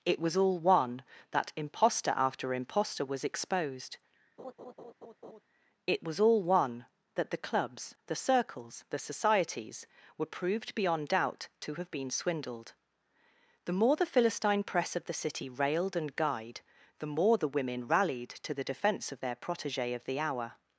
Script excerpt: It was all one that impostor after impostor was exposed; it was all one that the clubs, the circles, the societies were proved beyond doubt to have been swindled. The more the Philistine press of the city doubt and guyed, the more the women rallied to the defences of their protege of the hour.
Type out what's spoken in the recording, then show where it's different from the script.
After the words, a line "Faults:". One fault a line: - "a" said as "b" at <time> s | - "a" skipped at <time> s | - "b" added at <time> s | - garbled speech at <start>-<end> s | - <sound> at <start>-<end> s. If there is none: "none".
It was all one that impostor after impostor was exposed; it was all one that the clubs, the circles, the societies were proved beyond doubt to have been swindled. The more the Philistine press of the city railed and guyed, the more the women rallied to the defence of their protege of the hour.
Faults:
- laugh at 4.4-5.4 s
- "doubt" said as "railed" at 15.5 s
- "defences" said as "defence" at 18.7 s